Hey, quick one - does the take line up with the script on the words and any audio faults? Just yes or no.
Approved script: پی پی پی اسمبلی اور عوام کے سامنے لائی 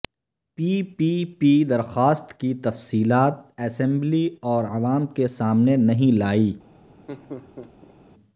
no